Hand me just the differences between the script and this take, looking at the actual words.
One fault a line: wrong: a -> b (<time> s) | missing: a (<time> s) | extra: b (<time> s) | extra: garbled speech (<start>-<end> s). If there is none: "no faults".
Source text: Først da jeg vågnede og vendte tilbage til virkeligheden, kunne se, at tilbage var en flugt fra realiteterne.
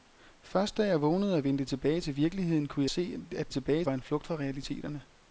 no faults